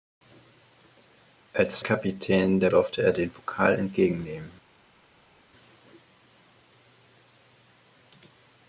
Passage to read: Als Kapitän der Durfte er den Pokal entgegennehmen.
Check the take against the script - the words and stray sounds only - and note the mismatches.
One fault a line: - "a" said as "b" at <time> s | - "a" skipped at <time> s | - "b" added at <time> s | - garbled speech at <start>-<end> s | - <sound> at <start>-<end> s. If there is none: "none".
none